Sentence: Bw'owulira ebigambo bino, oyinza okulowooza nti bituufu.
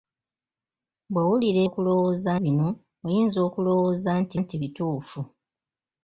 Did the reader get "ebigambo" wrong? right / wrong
wrong